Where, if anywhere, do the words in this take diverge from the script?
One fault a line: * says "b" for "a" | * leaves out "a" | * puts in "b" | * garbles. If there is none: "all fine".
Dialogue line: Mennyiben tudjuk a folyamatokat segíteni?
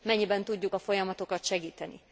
all fine